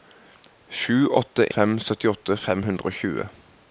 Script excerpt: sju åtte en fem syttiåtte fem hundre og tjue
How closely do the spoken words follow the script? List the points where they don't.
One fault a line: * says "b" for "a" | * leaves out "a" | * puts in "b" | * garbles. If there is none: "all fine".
* leaves out "en"